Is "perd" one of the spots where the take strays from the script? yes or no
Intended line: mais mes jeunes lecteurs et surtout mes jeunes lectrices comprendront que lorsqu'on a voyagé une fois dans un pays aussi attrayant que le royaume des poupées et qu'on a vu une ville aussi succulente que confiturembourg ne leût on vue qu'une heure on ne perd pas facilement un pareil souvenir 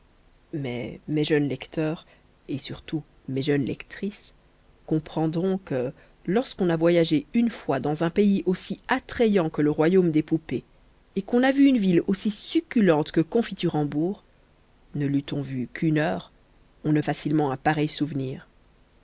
yes